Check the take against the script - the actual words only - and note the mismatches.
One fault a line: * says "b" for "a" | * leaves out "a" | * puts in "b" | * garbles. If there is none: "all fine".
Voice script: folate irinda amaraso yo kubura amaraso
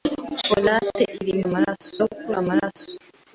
all fine